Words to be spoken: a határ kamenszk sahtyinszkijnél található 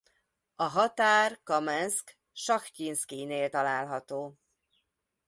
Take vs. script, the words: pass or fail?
pass